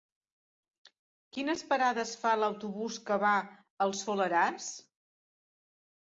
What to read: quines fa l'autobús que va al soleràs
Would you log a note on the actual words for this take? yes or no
yes